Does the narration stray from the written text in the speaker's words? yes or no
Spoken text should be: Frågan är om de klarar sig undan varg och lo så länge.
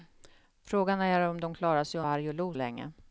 yes